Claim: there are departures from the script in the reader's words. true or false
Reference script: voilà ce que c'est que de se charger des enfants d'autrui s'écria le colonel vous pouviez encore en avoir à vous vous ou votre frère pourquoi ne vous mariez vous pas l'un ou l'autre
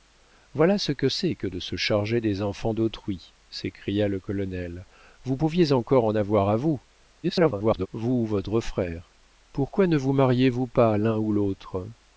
true